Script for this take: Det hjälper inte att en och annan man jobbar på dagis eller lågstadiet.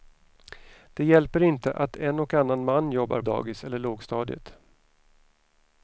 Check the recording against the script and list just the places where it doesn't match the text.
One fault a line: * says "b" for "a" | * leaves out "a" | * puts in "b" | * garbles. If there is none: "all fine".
* leaves out "på"